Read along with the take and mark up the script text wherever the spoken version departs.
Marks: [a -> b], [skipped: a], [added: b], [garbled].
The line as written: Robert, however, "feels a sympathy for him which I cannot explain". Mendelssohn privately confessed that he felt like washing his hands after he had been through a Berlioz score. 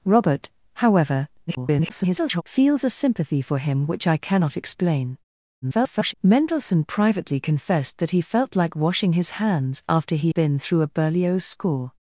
Robert, however, [garbled] "feels a sympathy for him which I cannot explain". [garbled] Mendelssohn privately confessed that he felt like washing his hands after he [skipped: had] been through a Berlioz score.